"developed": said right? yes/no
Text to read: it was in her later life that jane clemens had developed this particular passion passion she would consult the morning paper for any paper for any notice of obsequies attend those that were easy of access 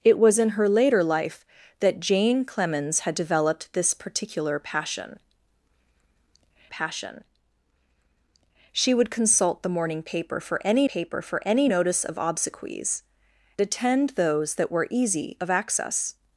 yes